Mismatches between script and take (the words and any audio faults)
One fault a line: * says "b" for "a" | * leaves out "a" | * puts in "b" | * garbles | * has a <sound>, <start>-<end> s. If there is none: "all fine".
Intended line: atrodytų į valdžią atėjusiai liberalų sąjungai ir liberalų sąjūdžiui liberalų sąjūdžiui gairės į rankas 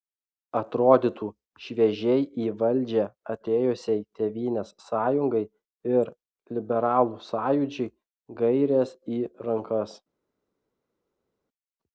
* puts in "šviežiai"
* says "tėvynės" for "liberalų"
* leaves out "liberalų sąjūdžiui"